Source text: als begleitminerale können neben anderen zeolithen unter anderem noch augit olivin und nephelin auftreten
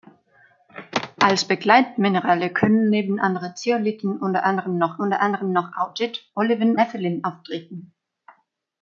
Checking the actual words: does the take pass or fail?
fail